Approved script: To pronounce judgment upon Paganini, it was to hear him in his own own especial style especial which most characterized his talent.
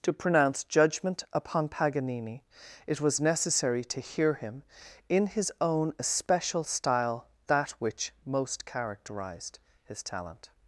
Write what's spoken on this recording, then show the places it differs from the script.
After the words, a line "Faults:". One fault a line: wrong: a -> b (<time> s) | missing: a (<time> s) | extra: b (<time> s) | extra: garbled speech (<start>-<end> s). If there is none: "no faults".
To pronounce judgment upon Paganini, it was necessary to hear him in his own especial style that which most characterized his talent.
Faults:
extra: necessary (3.2 s)
missing: own (5.9 s)
wrong: especial -> that (7.5 s)